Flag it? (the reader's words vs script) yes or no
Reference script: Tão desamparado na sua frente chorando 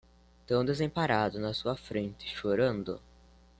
no